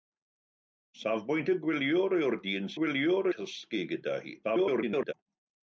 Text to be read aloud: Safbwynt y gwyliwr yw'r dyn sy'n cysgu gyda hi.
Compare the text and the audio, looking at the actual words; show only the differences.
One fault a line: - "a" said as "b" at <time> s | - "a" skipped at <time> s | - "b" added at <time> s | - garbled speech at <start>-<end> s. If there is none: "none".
- "sy'n" said as "gwyliwr" at 2.8 s
- garbled speech at 4.4-5.1 s